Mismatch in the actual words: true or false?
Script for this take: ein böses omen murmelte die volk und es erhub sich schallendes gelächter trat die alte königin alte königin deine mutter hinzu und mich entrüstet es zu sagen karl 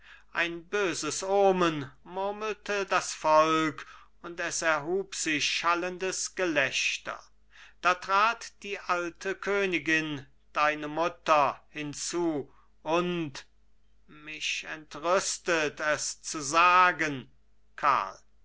true